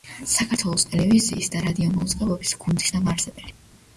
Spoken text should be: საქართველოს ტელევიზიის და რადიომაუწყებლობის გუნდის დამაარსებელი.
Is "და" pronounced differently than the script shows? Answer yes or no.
no